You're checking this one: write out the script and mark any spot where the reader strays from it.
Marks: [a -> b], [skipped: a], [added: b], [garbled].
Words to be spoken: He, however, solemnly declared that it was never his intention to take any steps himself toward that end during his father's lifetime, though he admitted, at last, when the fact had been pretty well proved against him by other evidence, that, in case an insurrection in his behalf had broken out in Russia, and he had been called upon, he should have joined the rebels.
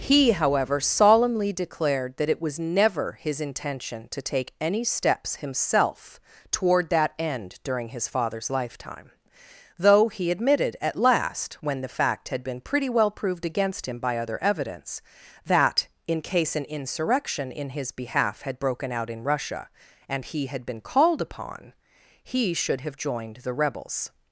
He, however, solemnly declared that it was never his intention to take any steps himself toward that end during his father's lifetime, though he admitted, at last, when the fact had been pretty well proved against him by other evidence, that, in case an insurrection in his behalf had broken out in Russia, and he had been called upon, he should have joined the rebels.